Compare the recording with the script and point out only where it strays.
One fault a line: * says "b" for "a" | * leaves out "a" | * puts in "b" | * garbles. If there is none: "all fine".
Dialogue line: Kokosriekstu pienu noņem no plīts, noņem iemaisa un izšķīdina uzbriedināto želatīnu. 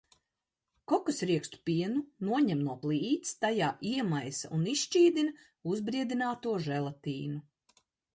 * says "tajā" for "noņem"